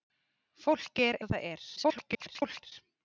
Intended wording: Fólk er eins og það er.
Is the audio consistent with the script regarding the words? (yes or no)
no